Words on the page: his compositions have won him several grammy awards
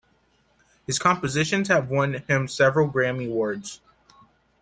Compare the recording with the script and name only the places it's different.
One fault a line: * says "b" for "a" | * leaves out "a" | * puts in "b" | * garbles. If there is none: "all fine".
all fine